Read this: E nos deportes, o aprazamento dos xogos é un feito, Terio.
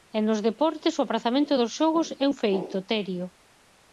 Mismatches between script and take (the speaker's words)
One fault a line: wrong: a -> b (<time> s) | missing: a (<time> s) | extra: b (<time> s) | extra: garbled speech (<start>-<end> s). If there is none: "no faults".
no faults